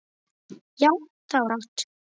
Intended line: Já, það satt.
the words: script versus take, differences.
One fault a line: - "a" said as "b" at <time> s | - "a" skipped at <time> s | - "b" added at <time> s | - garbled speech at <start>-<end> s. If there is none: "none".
none